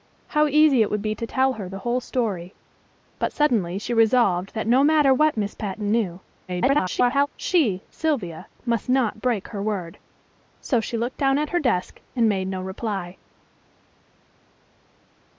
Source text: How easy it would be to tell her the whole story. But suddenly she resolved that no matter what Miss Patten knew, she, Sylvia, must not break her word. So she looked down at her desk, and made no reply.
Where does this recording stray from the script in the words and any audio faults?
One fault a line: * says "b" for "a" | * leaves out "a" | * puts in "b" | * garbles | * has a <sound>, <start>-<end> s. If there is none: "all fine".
* garbles